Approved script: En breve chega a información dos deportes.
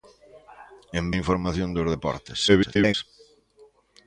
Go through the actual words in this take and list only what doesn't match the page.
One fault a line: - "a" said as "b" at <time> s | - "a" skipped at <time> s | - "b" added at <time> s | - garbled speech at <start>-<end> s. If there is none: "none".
- "breve chega" skipped at 1.1 s
- garbled speech at 2.5-2.9 s